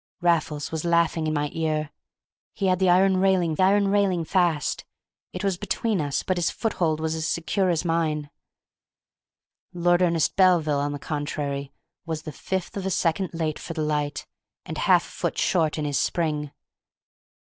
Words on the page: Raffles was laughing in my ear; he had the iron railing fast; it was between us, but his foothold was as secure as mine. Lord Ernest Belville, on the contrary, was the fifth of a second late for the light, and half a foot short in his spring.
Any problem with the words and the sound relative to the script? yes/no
yes